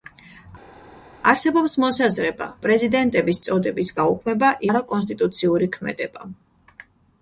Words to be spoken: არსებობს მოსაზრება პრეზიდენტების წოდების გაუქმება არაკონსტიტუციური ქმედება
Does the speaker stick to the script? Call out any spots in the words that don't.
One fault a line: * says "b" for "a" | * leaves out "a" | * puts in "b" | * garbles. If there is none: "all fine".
all fine